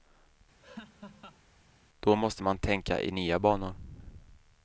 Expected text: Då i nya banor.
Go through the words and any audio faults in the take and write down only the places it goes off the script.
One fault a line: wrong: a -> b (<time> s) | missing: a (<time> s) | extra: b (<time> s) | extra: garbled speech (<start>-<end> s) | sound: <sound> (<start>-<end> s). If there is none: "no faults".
sound: laugh (0.6-1.4 s)
extra: måste man tänka (2.1 s)